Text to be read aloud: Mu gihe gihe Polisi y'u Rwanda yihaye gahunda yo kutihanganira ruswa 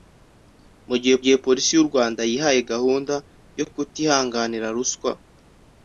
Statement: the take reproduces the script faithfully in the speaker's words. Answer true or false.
true